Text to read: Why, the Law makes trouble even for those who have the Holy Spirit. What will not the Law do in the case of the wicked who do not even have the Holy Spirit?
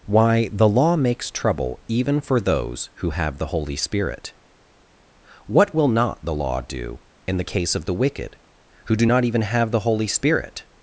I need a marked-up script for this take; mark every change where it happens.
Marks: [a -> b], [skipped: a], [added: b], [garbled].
Why, the Law makes trouble even for those who have the Holy Spirit. What will not the Law do in the case of the wicked who do not even have the Holy Spirit?